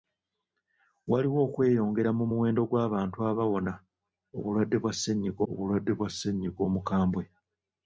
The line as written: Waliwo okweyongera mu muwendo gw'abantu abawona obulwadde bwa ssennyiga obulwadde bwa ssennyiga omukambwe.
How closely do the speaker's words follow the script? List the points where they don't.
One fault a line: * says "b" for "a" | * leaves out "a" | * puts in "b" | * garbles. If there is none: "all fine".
all fine